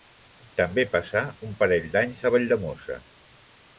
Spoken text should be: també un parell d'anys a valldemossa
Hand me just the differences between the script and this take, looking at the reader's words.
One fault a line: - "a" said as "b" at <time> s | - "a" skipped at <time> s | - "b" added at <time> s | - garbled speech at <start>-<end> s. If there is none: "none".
- "passà" added at 0.9 s